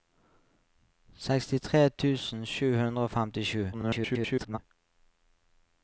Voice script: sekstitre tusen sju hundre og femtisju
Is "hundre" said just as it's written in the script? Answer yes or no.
yes